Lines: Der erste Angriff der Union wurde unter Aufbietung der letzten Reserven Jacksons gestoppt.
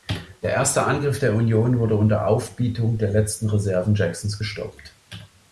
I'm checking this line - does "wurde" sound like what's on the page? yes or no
yes